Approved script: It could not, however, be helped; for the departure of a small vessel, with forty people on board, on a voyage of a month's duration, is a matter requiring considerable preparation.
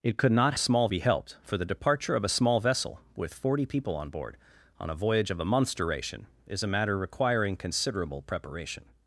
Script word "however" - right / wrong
wrong